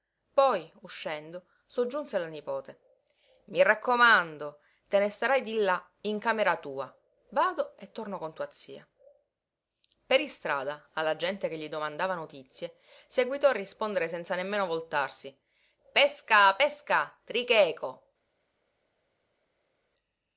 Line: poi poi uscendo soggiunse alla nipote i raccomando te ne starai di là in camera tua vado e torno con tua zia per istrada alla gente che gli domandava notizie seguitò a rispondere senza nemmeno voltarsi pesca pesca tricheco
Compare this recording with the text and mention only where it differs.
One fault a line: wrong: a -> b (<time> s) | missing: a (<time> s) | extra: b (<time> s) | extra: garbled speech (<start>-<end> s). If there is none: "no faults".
missing: poi (0.7 s)